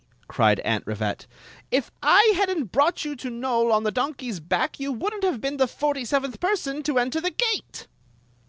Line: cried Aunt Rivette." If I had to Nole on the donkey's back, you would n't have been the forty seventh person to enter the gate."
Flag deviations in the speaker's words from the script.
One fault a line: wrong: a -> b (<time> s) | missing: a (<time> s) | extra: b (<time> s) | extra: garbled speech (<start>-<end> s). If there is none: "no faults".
extra: n't brought you (2.5 s)